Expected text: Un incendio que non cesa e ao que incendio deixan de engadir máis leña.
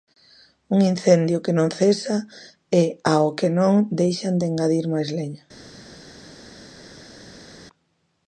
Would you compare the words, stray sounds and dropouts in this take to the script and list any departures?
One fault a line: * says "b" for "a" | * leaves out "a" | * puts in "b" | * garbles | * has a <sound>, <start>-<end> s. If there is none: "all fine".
* says "non" for "incendio"